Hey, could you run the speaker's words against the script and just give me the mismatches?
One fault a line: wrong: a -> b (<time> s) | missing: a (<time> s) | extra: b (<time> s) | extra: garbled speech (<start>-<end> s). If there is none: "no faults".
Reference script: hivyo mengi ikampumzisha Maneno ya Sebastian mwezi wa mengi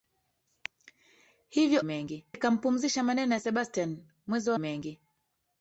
no faults